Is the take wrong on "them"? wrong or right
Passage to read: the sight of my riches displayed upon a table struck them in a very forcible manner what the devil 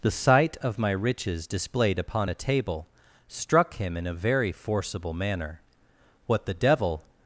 wrong